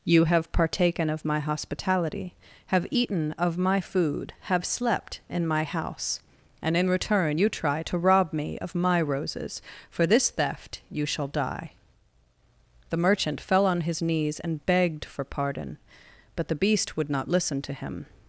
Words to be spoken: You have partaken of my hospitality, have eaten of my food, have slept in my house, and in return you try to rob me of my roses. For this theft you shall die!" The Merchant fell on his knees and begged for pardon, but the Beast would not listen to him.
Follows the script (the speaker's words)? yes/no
yes